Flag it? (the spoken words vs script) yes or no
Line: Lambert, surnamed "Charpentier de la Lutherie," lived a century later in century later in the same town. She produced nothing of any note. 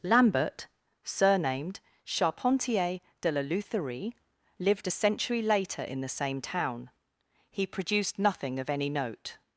yes